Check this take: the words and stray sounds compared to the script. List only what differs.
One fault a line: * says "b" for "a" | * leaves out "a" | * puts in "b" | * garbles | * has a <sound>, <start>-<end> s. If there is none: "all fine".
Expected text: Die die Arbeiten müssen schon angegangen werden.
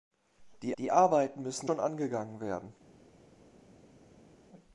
all fine